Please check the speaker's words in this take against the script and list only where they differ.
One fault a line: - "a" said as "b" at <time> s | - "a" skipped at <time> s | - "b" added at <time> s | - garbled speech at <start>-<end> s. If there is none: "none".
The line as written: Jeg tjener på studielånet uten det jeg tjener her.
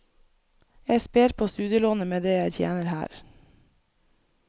- "tjener" said as "sper" at 1.0 s
- "uten" said as "med" at 2.1 s